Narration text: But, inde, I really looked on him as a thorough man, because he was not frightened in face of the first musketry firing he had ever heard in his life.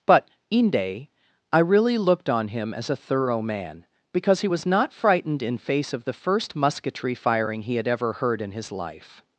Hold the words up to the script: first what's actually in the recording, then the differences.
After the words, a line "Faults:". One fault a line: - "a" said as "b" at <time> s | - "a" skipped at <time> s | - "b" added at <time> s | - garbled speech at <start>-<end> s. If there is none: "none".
But, inde, I really looked on him as a thorough man, because he was not frightened in face of the first musketry firing he had ever heard in his life.
Faults:
none